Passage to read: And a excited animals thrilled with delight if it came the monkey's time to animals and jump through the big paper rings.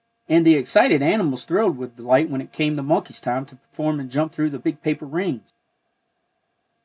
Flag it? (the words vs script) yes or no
yes